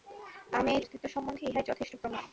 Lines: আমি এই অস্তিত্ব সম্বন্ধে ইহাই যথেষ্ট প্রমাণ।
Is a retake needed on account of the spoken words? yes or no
no